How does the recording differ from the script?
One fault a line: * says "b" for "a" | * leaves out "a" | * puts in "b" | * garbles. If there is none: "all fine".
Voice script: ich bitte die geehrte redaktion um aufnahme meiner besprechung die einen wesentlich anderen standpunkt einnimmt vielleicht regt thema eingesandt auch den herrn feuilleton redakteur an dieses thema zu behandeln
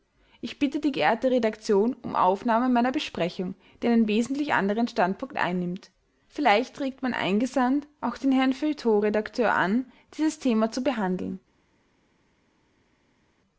* says "mein" for "thema"